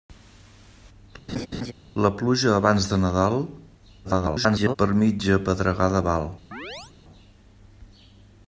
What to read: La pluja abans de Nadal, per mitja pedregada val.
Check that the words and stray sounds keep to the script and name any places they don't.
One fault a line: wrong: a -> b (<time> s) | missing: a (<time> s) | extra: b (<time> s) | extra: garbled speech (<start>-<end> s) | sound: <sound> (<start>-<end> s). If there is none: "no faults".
sound: laugh (1.3-1.7 s)
extra: garbled speech (4.0-4.8 s)
sound: chirp (6.5-6.9 s)